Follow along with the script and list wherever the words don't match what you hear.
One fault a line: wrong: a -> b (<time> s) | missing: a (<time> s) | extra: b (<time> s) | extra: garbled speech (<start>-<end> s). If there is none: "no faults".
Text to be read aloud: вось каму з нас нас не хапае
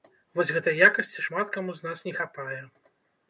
extra: гэтай якасці шмат (0.6 s)
missing: нас (2.0 s)